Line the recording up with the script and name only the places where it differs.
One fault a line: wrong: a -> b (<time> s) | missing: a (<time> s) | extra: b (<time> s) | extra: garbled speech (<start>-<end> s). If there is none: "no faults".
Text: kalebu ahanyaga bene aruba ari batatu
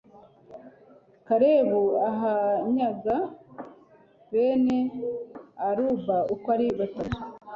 extra: uko (6.3 s)